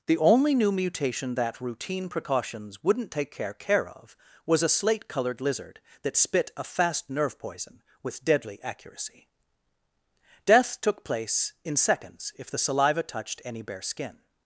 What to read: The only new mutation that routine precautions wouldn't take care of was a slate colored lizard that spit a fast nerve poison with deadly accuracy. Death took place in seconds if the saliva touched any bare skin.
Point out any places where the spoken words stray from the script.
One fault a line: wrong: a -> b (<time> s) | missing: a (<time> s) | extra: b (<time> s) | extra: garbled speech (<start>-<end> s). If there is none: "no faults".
extra: care (3.5 s)